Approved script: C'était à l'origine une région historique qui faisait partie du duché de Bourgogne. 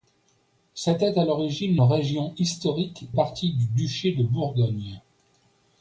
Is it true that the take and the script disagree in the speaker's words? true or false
true